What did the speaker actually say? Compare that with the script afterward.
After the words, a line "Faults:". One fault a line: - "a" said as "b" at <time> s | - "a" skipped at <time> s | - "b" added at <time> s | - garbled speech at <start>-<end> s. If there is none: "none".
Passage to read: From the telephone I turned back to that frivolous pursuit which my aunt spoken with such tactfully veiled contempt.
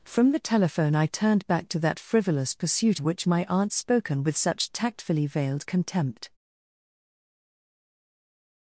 From the telephone I turned back to that frivolous pursuit which my aunt spoken with such tactfully veiled contempt.
Faults:
none